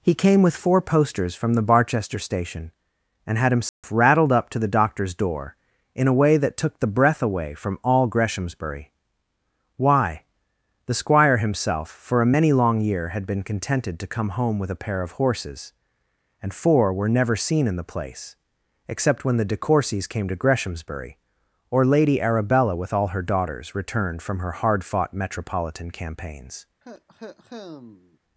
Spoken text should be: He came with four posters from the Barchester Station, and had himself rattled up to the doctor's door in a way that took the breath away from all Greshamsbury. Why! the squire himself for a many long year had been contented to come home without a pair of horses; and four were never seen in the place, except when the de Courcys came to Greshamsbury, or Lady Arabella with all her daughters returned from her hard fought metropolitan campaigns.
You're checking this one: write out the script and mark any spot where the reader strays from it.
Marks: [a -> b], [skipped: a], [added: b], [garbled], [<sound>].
He came with four posters from the Barchester Station, and had himself [dropout] rattled up to the doctor's door in a way that took the breath away from all Greshamsbury. Why! the squire himself for a many long year had been contented to come home [without -> with] a pair of horses; and four were never seen in the place, except when the de Courcys came to Greshamsbury, or Lady Arabella with all her daughters returned from her hard fought metropolitan campaigns. [cough]